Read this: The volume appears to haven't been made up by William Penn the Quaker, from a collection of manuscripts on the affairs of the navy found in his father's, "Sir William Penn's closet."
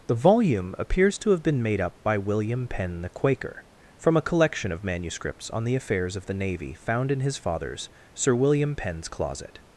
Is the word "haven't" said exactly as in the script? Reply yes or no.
no